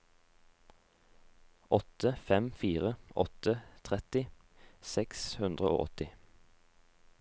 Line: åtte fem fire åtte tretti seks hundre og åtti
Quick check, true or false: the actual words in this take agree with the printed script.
true